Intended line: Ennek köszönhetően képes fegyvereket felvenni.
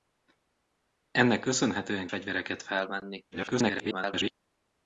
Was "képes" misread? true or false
true